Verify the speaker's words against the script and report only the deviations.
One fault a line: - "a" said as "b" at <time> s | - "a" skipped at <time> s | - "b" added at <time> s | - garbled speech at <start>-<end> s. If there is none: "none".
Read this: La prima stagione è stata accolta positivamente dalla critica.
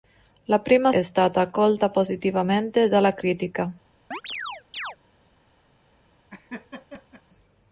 - "stagione" skipped at 0.9 s